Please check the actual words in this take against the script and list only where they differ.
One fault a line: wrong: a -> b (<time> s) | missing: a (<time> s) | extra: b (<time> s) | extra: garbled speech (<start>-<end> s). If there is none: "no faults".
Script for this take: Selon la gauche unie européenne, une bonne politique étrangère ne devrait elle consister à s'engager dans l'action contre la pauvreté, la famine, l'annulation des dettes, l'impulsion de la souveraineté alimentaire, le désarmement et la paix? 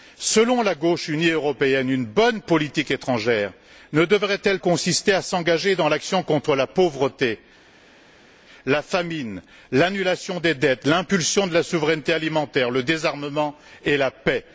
no faults